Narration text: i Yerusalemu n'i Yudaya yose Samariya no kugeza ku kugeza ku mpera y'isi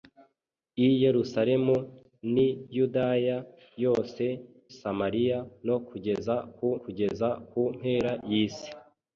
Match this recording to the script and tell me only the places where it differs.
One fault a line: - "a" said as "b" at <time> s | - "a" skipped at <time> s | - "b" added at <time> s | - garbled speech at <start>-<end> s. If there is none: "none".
none